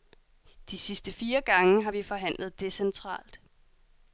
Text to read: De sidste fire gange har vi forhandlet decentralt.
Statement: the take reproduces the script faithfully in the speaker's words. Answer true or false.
true